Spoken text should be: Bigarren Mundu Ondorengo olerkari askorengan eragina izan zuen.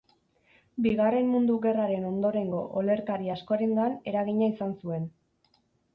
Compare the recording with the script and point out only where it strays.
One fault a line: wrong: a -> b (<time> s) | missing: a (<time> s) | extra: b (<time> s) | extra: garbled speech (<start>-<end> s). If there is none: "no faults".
extra: Gerraren (1.6 s)